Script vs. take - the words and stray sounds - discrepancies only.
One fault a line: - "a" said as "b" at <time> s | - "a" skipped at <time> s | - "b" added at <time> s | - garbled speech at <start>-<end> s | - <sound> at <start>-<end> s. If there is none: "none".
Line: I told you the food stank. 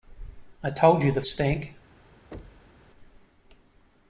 - "food" skipped at 1.2 s
- thud at 2.3-2.8 s